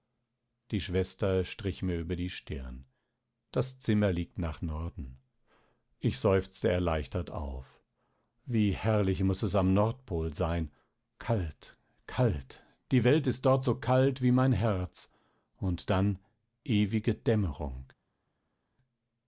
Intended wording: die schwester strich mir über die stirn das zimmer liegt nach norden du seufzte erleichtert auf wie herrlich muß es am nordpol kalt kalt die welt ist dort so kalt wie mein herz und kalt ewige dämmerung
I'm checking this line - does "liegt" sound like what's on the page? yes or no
yes